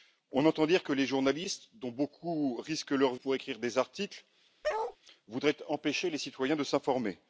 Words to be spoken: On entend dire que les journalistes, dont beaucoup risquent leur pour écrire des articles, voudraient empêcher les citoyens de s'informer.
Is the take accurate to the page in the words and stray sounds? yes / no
no